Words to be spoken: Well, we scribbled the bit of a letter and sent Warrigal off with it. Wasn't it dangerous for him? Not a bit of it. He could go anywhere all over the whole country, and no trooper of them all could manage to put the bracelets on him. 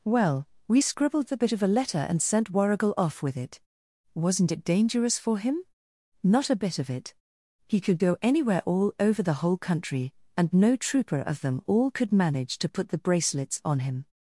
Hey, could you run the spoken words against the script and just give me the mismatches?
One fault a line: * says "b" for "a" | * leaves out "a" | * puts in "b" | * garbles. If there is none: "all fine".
all fine